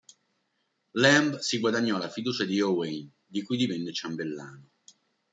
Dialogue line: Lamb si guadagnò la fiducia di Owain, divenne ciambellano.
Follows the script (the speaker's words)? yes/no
no